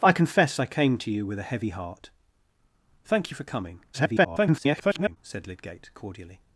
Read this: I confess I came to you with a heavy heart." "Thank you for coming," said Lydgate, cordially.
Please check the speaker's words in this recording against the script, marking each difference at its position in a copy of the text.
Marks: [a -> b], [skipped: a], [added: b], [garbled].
I confess I came to you with a heavy heart." "Thank you for coming," [garbled] said Lydgate, cordially.